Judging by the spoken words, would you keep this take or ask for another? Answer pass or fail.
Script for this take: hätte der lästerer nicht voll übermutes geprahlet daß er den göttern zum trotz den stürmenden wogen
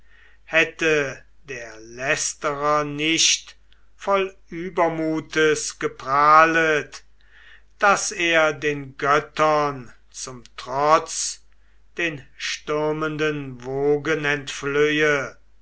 pass